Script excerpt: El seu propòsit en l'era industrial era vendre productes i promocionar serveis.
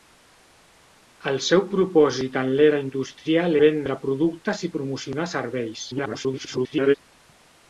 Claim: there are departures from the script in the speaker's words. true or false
true